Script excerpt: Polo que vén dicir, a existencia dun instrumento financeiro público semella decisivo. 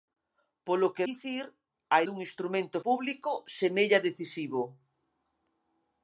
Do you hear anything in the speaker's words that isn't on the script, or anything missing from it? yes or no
yes